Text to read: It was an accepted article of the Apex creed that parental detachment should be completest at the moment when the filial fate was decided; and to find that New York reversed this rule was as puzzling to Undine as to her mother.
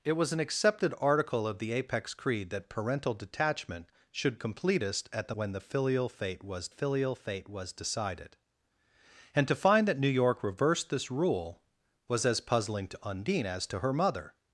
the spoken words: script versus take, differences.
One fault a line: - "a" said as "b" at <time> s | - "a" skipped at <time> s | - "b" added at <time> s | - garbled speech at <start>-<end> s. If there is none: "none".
- "be" skipped at 4.3 s
- "moment" skipped at 5.3 s
- "filial fate was" added at 6.7 s